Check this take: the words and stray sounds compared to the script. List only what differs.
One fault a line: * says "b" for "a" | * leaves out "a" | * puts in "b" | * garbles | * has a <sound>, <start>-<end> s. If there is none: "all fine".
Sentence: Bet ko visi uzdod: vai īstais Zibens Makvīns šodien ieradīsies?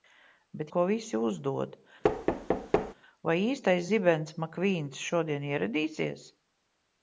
* has a thud, 2.0-2.9 s